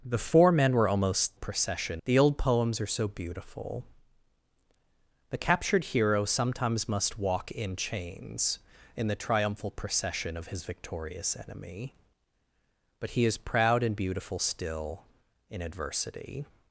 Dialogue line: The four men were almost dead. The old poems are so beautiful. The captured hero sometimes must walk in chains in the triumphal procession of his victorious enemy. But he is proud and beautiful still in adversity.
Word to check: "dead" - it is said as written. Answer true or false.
false